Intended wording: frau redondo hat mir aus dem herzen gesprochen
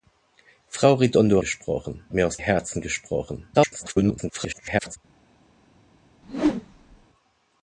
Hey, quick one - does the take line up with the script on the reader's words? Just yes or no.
no